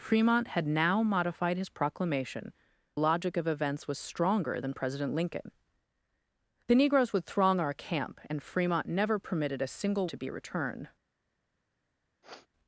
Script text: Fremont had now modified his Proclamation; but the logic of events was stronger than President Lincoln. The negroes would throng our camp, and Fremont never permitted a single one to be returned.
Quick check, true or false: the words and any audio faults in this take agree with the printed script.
false